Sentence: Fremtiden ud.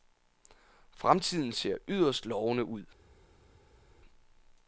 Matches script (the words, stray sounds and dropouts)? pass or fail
fail